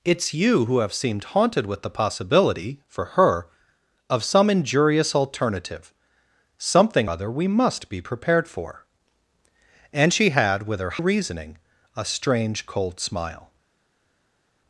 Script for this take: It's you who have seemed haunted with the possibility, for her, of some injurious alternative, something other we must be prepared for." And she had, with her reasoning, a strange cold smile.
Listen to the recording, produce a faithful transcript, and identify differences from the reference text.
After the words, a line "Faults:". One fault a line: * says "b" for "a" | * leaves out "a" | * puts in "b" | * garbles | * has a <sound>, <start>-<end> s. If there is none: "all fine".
It's you who have seemed haunted with the possibility, for her, of some injurious alternative, something other we must be prepared for." And she had, with her reasoning, a strange cold smile.
Faults:
all fine